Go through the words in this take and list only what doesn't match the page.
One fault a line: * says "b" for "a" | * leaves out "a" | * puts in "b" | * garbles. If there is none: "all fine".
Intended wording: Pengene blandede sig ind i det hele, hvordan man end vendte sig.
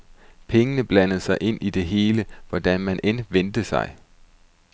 all fine